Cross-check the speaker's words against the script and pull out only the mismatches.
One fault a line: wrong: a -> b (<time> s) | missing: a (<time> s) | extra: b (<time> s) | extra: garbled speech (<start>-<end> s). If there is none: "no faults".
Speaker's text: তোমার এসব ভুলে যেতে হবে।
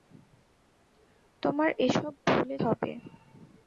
missing: যেতে (2.5 s)